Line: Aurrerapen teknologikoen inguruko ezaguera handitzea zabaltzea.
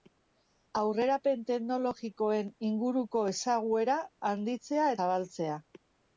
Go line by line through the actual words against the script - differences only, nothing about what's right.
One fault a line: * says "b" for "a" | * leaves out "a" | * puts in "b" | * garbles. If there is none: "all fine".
all fine